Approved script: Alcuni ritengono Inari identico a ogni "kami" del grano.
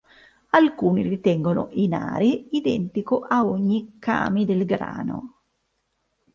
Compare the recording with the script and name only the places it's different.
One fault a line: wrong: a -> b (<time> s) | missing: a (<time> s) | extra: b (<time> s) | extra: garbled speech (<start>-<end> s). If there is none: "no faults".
no faults